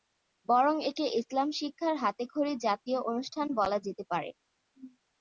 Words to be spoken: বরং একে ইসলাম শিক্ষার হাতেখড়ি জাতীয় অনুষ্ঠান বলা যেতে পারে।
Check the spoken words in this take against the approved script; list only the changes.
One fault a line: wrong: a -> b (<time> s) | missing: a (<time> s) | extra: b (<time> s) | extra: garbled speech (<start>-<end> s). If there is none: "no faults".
no faults